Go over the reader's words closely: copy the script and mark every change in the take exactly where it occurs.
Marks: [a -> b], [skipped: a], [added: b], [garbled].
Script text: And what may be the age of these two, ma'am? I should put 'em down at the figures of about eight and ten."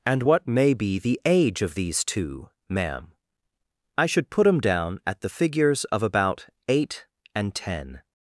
And what may be the age of these two, ma'am? I should put 'em down at the figures of about eight and ten."